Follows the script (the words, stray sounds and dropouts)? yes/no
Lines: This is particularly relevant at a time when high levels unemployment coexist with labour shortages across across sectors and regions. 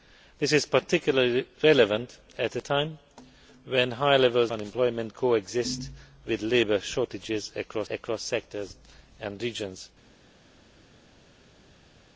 yes